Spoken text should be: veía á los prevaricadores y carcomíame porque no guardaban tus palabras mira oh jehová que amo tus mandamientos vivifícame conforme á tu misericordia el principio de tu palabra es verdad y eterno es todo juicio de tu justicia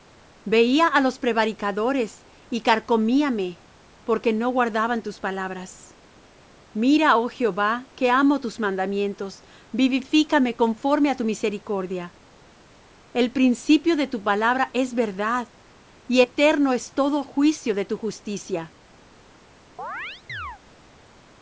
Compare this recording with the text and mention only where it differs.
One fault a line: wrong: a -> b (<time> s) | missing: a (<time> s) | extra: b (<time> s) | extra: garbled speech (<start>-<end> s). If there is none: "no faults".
no faults